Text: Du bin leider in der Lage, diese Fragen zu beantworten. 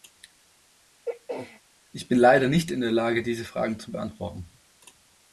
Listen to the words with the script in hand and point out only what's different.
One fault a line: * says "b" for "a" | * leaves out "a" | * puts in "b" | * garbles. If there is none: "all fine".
* says "Ich" for "Du"
* puts in "nicht"